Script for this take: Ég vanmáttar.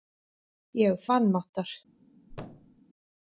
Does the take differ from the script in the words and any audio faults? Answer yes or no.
yes